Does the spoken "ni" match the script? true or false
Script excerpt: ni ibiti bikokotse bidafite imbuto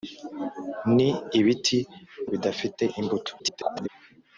true